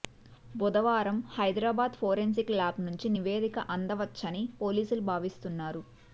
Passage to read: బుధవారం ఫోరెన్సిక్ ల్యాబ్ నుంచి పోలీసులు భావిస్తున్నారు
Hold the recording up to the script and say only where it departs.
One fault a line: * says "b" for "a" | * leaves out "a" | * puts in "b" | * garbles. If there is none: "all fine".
* puts in "హైదరాబాద్"
* puts in "నివేదిక అందవచ్చని"